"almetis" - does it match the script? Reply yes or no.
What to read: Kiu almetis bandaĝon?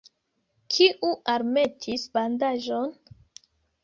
yes